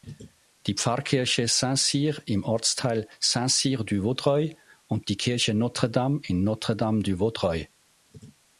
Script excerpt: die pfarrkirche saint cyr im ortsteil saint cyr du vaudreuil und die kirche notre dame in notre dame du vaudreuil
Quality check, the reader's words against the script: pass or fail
pass